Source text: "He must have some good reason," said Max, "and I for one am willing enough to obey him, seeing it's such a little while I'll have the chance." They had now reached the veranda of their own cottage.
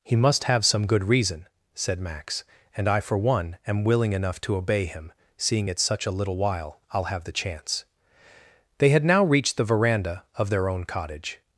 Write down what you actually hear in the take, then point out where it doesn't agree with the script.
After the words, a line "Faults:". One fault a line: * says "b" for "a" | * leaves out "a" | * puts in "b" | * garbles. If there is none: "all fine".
"He must have some good reason," said Max, "and I for one am willing enough to obey him, seeing it's such a little while I'll have the chance." They had now reached the veranda of their own cottage.
Faults:
all fine